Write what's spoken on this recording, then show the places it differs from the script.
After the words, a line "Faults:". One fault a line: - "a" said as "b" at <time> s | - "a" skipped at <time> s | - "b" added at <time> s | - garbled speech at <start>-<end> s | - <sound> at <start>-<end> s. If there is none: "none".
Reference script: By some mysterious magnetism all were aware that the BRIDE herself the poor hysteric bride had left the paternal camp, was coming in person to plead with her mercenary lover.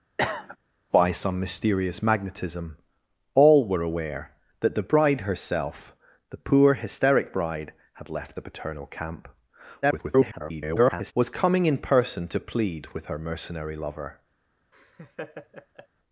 By some mysterious magnetism all were aware that the BRIDE herself the poor hysteric bride had left the paternal camp, [garbled] was coming in person to plead with her mercenary lover.
Faults:
- cough at 0.2-0.6 s
- garbled speech at 9.8-11.1 s
- laugh at 14.7-15.9 s